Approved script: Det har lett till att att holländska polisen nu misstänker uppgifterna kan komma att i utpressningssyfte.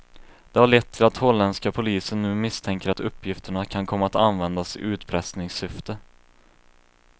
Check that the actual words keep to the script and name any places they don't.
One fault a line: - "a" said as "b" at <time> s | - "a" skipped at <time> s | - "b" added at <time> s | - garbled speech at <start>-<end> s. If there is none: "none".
- "att" skipped at 1.2 s
- "att" added at 2.9 s
- "användas" added at 4.1 s